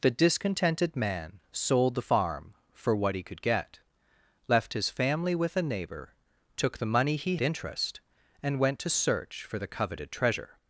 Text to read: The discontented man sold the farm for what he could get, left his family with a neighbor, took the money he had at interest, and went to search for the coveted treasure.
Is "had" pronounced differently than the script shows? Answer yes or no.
yes